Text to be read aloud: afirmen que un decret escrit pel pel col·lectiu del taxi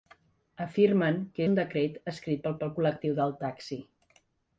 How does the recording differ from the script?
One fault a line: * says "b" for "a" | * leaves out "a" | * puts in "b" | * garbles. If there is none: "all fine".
all fine